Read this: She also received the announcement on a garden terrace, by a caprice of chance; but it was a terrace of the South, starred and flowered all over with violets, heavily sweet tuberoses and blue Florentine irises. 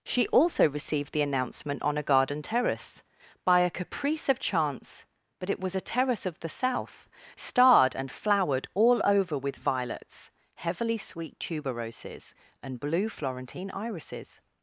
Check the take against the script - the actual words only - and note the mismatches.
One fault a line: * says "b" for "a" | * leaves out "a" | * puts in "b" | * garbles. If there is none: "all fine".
all fine